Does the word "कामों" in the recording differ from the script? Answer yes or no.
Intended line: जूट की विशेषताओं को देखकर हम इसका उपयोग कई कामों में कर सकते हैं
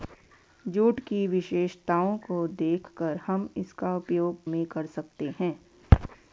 yes